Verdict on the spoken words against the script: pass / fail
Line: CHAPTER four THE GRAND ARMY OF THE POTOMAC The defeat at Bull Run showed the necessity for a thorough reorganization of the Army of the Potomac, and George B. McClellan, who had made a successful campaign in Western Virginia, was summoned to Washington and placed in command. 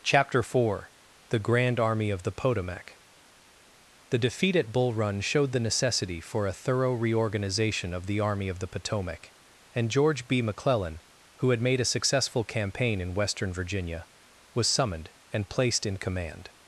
fail